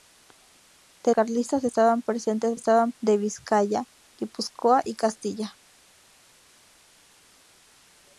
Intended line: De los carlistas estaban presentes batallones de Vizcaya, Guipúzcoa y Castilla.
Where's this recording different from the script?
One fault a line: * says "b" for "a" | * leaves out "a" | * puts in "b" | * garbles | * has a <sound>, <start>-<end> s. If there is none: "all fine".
* leaves out "los"
* says "estaban" for "batallones"